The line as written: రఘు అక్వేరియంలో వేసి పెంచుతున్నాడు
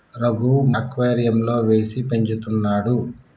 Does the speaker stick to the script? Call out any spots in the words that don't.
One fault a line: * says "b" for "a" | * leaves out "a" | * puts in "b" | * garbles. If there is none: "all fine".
all fine